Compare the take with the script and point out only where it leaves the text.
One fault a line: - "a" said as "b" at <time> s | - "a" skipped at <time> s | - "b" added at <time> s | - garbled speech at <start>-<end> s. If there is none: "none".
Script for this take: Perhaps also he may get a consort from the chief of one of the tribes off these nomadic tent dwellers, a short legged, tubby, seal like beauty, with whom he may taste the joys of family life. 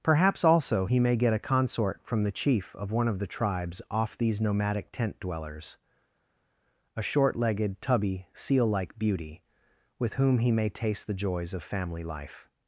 none